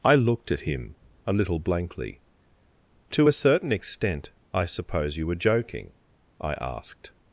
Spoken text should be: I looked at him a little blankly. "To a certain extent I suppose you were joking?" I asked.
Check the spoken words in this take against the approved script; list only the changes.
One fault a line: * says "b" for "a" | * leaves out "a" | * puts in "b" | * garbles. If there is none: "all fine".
all fine